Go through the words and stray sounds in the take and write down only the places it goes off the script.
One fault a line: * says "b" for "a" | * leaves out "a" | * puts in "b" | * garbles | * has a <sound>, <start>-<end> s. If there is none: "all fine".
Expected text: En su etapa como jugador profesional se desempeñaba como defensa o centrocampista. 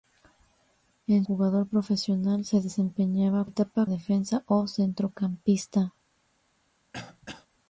* leaves out "su etapa como"
* says "etapa" for "como"
* has a throat clearing, 6.9-7.5 s